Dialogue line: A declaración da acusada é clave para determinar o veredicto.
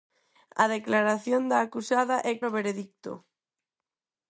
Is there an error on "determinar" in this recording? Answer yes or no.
yes